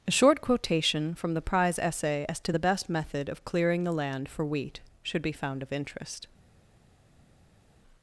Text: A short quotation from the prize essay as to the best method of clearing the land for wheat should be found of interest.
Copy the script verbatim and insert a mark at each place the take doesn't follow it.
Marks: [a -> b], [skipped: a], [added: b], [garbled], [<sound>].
A short quotation from the prize essay as to the best method of clearing the land for wheat should be found of interest.